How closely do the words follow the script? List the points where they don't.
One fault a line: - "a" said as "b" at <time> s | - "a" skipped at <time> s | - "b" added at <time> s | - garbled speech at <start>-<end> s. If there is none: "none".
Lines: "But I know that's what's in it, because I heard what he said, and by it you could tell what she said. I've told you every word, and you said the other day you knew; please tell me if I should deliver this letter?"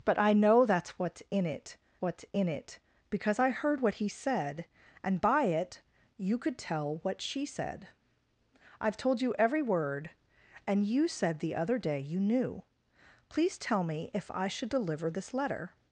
- "what's in it" added at 2.0 s